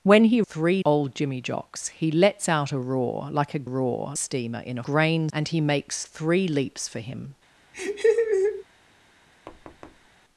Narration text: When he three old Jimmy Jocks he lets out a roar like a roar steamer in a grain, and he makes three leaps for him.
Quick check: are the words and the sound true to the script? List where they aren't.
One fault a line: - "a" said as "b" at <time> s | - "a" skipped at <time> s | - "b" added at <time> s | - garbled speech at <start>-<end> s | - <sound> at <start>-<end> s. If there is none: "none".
- laugh at 7.7-8.6 s
- thud at 9.5-10.1 s